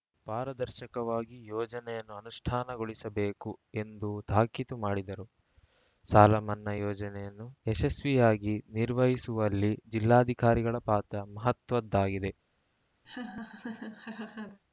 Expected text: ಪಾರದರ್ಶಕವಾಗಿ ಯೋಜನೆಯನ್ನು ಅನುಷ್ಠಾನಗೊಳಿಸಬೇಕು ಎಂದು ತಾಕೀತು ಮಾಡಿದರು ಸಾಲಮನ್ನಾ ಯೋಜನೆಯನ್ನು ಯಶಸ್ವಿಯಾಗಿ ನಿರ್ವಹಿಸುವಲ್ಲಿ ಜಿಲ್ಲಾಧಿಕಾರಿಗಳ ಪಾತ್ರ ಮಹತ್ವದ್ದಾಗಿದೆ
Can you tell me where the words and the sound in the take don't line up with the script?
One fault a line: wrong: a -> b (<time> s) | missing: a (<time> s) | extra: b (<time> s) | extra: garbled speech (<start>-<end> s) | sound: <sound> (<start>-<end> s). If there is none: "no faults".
sound: laugh (13.0-14.6 s)